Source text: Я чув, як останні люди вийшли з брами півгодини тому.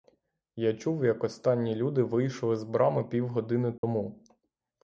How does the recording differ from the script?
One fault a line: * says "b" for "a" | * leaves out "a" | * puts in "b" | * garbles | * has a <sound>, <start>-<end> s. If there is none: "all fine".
* has a dropout, 3.8-3.8 s